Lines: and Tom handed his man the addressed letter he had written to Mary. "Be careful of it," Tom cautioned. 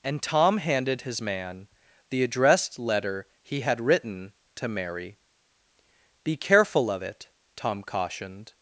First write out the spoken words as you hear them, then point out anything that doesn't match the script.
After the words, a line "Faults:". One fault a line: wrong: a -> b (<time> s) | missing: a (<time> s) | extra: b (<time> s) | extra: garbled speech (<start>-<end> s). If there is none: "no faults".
and Tom handed his man the addressed letter he had written to Mary. "Be careful of it," Tom cautioned.
Faults:
no faults